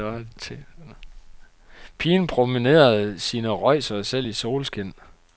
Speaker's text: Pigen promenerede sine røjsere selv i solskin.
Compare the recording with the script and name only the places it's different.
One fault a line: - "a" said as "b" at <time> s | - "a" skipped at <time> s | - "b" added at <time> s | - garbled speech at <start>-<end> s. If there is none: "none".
none